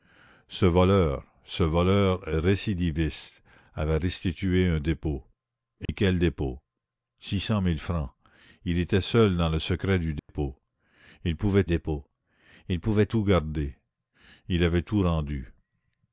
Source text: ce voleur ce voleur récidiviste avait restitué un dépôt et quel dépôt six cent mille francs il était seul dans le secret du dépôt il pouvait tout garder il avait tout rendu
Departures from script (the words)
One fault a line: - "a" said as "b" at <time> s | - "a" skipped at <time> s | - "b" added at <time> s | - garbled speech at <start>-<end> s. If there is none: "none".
- "dépôt il pouvait" added at 11.7 s